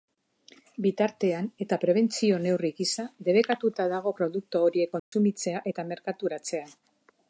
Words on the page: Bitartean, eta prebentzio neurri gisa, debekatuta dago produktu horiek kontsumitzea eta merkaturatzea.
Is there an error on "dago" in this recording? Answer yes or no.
no